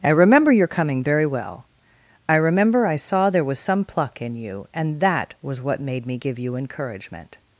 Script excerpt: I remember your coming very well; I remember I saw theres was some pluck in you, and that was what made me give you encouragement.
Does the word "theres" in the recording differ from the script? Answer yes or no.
yes